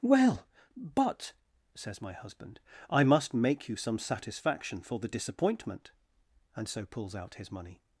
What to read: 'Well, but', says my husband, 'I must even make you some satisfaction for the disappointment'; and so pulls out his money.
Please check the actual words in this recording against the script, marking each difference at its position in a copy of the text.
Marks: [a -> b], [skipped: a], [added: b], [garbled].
'Well, but', says my husband, 'I must [skipped: even] make you some satisfaction for the disappointment'; and so pulls out his money.